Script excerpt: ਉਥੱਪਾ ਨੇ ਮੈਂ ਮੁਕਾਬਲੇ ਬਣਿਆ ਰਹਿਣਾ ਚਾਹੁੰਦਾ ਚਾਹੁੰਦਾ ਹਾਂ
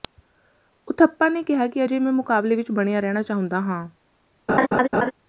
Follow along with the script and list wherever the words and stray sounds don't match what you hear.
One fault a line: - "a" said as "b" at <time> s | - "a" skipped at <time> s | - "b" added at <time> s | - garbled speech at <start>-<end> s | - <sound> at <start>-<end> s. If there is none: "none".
- "ਕਿਹਾ ਕਿ ਅਜੇ" added at 1.4 s
- "ਵਿਚ" added at 2.5 s
- "ਚਾਹੁੰਦਾ" skipped at 3.6 s
- laugh at 4.5-5.1 s